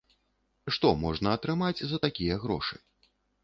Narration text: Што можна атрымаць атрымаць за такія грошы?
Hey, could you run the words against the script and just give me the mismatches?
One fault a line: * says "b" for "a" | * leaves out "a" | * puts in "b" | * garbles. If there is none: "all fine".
* leaves out "атрымаць"